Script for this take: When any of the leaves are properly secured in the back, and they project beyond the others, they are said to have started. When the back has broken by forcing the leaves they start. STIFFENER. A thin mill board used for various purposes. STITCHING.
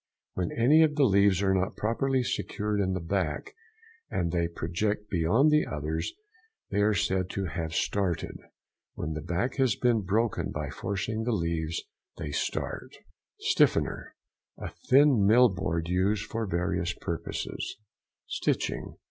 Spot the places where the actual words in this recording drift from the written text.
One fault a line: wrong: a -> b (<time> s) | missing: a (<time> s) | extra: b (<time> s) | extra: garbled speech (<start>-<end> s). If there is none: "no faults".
extra: not (1.5 s)
extra: been (9.7 s)